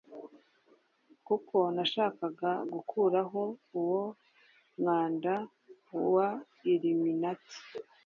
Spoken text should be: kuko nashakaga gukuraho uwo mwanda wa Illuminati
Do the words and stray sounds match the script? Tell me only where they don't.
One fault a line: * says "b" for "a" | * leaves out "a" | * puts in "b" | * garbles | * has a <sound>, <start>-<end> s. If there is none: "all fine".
all fine